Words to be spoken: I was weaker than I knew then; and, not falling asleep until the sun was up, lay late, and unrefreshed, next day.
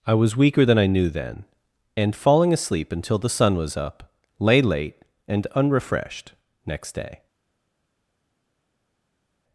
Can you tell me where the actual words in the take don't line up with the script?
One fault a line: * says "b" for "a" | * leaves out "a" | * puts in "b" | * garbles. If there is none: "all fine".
* leaves out "not"